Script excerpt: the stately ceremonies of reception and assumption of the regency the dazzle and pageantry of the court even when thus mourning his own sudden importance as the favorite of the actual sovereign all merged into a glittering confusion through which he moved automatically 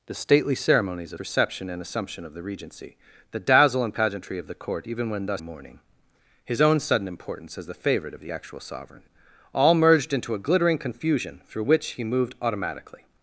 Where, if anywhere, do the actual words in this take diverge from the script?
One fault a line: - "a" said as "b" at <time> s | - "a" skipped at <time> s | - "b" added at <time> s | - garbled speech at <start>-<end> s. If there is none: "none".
none